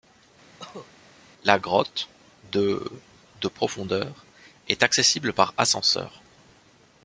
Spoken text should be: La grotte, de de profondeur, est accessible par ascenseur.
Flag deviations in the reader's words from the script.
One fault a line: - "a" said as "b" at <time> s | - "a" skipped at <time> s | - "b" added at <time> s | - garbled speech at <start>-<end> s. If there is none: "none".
none